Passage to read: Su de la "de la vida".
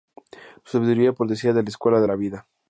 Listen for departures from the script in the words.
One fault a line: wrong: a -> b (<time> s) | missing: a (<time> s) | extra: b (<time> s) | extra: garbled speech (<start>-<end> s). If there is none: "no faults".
extra: sabiduría procedía (0.8 s)
extra: escuela (1.7 s)